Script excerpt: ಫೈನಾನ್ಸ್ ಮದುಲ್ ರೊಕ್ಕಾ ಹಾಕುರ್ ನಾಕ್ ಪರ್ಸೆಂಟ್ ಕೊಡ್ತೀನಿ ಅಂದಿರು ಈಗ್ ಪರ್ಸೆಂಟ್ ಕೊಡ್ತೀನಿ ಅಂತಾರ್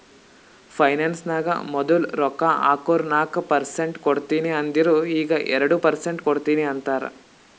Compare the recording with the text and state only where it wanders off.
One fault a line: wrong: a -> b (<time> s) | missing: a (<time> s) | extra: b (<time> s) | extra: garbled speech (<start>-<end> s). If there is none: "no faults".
extra: ನಾಗ್ (1.3 s)
extra: ಎರಡು (5.5 s)